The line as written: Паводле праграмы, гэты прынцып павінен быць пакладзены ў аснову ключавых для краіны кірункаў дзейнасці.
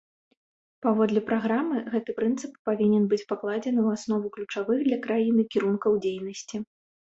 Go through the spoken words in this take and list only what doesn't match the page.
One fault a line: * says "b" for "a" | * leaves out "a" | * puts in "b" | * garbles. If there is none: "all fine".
all fine